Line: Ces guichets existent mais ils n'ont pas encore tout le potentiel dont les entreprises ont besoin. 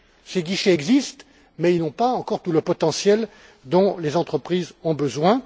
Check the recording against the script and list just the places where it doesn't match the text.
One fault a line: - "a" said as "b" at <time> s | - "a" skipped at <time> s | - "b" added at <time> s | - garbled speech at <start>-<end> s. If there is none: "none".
none